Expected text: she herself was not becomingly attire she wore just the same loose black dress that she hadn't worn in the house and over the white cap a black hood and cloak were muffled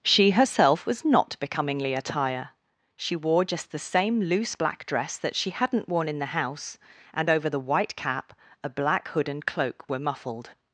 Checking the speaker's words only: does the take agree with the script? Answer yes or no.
yes